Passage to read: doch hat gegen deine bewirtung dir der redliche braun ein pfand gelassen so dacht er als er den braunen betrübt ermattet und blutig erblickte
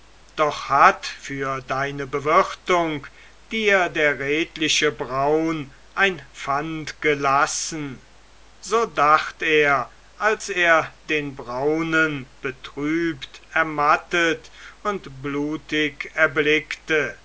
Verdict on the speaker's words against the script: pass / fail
fail